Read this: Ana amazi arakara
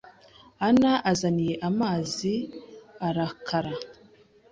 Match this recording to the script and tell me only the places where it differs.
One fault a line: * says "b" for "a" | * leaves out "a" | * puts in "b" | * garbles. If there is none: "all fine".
* puts in "azaniye"